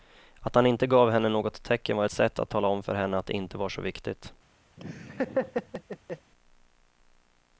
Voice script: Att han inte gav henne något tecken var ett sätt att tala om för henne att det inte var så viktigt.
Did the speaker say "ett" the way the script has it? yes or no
no